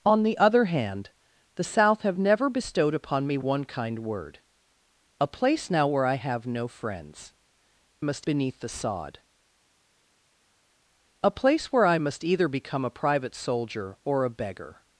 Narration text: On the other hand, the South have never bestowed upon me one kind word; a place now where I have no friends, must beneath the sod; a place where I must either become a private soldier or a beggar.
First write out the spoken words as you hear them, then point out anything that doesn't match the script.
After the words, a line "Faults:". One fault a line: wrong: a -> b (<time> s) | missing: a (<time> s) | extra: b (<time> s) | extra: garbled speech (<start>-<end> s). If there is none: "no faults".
On the other hand, the South have never bestowed upon me one kind word; a place now where I have no friends, must beneath the sod; a place where I must either become a private soldier or a beggar.
Faults:
no faults